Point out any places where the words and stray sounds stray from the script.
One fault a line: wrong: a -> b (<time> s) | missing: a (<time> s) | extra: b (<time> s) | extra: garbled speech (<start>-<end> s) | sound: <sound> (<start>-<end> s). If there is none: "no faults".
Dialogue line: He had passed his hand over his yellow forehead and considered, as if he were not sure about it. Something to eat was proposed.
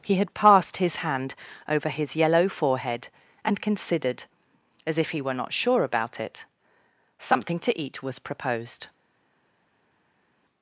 no faults